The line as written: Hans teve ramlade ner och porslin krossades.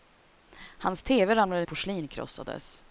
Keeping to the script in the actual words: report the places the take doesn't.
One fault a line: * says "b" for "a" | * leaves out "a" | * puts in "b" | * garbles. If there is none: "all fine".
* leaves out "ner och"